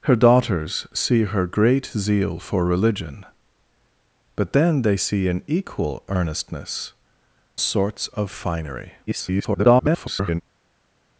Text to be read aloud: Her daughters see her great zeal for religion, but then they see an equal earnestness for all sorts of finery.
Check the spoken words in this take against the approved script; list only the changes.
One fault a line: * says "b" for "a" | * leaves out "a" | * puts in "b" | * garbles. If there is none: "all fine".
* leaves out "for all"
* garbles